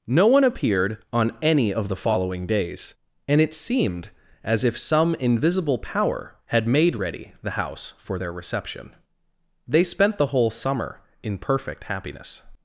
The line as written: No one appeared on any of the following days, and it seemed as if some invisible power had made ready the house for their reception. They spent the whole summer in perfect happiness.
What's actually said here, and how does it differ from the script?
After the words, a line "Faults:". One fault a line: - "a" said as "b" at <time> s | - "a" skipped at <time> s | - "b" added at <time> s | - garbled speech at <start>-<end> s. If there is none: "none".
No one appeared on any of the following days, and it seemed as if some invisible power had made ready the house for their reception. They spent the whole summer in perfect happiness.
Faults:
none